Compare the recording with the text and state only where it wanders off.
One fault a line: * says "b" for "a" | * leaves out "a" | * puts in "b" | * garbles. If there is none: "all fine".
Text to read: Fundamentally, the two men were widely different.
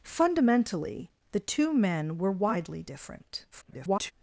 * garbles